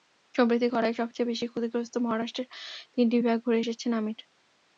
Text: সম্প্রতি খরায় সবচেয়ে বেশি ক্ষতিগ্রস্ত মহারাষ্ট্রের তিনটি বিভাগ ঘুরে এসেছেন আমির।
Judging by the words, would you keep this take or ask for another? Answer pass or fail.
pass